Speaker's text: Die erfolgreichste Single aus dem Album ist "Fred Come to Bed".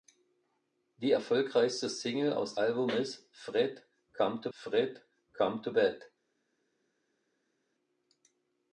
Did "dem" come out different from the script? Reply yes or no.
yes